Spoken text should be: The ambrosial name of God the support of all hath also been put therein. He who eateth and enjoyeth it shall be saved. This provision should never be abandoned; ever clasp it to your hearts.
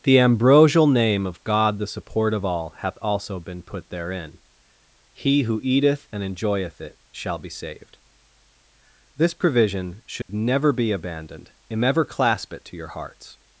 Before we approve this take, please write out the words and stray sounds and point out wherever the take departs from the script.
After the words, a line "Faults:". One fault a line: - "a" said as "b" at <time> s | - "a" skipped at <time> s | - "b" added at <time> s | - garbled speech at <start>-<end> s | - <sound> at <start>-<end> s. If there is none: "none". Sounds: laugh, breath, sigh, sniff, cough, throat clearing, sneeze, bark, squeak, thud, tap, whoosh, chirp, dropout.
The ambrosial name of God the support of all hath also been put therein. He who eateth and enjoyeth it shall be saved. This provision should never be abandoned; and ever clasp it to your hearts.
Faults:
- dropout at 10.2-10.3 s
- "and" added at 11.7 s